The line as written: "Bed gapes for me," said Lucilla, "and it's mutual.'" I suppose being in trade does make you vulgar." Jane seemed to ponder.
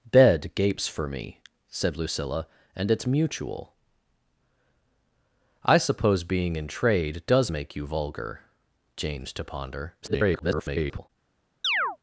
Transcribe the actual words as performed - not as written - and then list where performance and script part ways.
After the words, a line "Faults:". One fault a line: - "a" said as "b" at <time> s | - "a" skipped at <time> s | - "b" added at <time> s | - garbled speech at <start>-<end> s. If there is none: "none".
"Bed gapes for me," said Lucilla, "and it's mutual.'" I suppose being in trade does make you vulgar." Jane to ponder. [garbled]
Faults:
- "seemed" skipped at 9.3 s
- garbled speech at 10.0-11.1 s